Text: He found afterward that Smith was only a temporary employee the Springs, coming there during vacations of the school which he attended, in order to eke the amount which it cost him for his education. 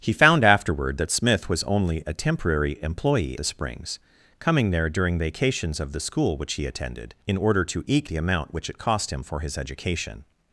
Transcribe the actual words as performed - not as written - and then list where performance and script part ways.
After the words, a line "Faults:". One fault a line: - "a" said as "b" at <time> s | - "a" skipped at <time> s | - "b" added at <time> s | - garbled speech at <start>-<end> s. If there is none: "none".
He found afterward that Smith was only a temporary employee the Springs, coming there during vacations of the school which he attended, in order to eke the amount which it cost him for his education.
Faults:
none